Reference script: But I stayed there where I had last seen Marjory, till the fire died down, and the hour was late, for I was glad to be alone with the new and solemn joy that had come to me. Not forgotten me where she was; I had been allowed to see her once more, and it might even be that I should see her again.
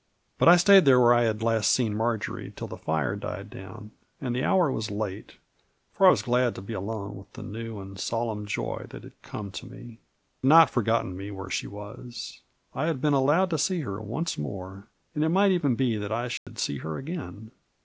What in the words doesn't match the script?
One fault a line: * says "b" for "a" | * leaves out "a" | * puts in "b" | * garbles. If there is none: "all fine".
all fine